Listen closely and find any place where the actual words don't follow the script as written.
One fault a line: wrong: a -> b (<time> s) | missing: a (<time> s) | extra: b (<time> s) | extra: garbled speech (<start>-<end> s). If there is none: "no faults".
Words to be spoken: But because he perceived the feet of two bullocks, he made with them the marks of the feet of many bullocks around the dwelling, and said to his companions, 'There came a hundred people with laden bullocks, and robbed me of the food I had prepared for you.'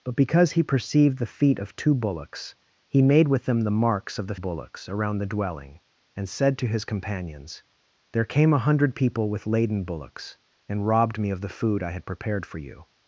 missing: feet of many (4.3 s)